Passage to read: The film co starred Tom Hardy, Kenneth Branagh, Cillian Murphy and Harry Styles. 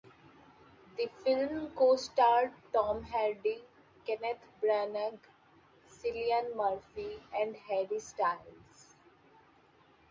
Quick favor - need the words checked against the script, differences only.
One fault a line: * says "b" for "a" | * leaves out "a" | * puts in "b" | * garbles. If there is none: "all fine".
all fine